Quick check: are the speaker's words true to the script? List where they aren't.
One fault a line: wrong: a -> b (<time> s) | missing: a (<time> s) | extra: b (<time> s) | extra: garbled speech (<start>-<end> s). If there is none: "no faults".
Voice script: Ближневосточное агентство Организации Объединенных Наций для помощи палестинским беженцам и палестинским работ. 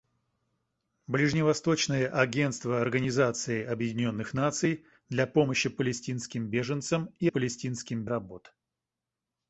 no faults